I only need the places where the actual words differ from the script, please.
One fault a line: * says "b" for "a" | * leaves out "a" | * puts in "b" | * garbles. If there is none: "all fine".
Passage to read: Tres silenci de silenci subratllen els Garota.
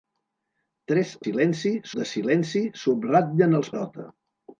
all fine